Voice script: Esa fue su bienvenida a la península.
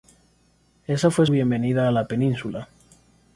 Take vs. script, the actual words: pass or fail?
fail